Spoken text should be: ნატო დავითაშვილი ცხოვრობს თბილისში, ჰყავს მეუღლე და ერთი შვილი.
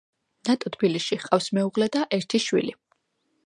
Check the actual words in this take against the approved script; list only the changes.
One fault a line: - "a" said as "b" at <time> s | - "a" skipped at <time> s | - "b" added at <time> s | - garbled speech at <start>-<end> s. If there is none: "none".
- "დავითაშვილი ცხოვრობს" skipped at 0.7 s